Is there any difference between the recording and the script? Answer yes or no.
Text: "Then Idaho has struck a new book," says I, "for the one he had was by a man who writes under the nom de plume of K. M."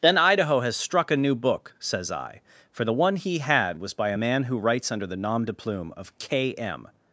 no